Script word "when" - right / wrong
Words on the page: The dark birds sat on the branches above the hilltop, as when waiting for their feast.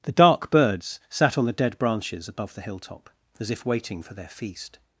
wrong